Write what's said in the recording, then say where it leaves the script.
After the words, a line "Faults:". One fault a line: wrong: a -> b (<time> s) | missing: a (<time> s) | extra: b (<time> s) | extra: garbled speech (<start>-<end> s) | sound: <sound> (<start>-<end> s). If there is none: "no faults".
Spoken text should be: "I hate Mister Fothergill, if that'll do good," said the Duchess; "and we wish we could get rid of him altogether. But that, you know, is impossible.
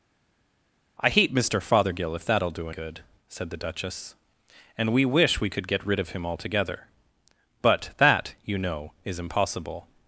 "I hate Mister Fothergill, if that'll do good," said the Duchess; "and we wish we could get rid of him altogether. But that, you know, is impossible.
Faults:
no faults